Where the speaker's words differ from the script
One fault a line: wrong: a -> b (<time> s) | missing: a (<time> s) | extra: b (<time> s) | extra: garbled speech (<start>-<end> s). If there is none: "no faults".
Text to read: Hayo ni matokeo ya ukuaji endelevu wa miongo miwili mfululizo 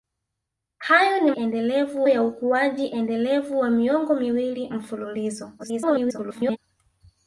wrong: matokeo -> endelevu (1.3 s)
extra: garbled speech (5.6-6.6 s)